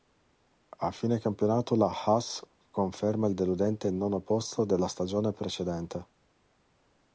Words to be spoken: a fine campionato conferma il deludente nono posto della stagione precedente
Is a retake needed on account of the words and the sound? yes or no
yes